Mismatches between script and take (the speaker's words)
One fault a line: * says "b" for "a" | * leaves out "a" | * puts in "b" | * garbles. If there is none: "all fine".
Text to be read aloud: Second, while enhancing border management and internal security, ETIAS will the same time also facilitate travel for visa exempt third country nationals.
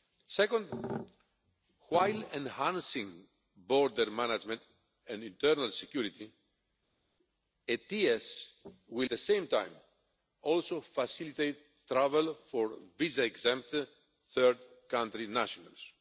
all fine